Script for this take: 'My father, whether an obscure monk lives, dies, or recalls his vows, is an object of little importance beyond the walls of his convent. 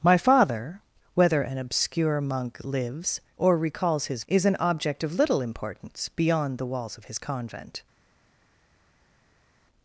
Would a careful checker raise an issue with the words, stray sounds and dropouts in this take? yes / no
yes